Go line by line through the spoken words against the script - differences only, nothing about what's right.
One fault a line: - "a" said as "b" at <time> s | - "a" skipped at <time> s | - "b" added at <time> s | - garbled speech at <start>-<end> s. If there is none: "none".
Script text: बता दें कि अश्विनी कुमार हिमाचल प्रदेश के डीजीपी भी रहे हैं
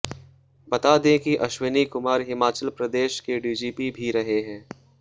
none